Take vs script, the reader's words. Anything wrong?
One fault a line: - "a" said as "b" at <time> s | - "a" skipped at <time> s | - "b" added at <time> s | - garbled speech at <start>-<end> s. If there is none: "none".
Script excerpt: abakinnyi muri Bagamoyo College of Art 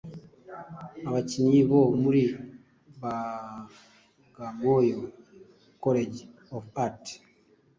- "bo" added at 1.7 s